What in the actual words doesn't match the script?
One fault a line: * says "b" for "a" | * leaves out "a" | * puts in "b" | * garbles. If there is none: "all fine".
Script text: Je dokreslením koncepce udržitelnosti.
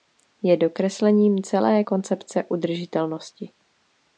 * puts in "celé"